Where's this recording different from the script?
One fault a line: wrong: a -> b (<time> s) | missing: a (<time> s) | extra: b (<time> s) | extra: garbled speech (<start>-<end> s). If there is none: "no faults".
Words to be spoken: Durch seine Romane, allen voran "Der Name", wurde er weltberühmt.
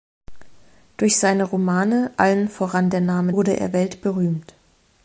no faults